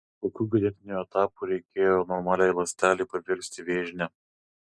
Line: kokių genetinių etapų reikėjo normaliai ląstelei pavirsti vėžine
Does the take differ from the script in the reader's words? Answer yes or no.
no